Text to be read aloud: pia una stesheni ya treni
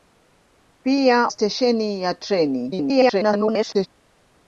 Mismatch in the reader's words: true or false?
true